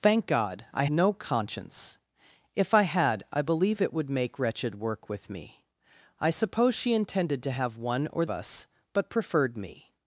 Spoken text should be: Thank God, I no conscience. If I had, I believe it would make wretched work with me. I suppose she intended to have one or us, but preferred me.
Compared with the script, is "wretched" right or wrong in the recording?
right